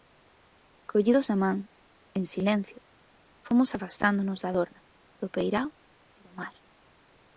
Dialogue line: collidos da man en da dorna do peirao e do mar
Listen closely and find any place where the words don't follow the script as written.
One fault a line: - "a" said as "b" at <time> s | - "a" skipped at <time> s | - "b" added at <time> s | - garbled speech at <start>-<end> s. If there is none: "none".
- "silencio fomos afastándonos" added at 2.2 s